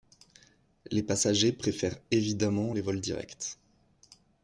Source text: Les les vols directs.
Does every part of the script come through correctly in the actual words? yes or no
no